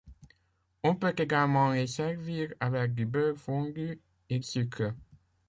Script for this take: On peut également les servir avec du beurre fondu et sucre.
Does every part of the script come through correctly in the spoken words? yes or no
yes